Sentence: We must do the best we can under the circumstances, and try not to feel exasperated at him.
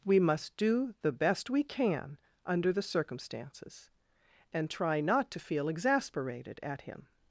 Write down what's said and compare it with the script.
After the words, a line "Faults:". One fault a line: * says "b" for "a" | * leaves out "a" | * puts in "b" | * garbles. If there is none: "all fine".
We must do the best we can under the circumstances, and try not to feel exasperated at him.
Faults:
all fine